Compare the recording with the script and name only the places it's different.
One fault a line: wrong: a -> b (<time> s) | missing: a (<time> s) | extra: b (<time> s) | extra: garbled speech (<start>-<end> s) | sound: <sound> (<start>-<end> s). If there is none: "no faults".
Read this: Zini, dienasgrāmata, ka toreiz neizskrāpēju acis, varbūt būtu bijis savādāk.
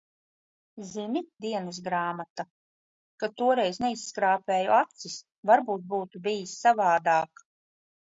no faults